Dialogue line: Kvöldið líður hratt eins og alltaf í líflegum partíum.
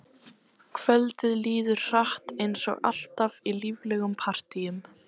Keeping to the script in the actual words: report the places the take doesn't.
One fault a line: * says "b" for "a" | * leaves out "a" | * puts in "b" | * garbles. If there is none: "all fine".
all fine